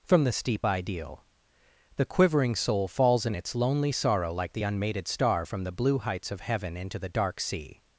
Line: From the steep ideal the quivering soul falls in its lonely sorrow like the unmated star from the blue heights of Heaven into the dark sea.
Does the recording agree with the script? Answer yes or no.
yes